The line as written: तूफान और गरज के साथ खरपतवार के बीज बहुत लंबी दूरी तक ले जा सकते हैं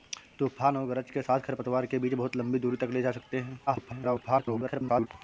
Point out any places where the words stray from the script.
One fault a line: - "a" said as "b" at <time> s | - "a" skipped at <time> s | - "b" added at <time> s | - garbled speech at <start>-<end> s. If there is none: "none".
- garbled speech at 3.7-5.1 s